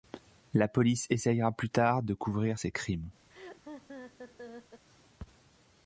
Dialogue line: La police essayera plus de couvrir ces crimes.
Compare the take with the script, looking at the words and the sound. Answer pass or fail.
fail